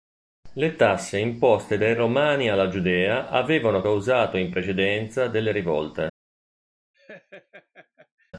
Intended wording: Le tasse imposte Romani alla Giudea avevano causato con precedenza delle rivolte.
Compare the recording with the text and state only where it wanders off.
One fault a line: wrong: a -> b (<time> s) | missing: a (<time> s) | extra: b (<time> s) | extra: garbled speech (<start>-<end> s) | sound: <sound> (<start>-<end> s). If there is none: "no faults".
extra: dai (1.7 s)
wrong: con -> in (4.4 s)
sound: laugh (6.9-8.3 s)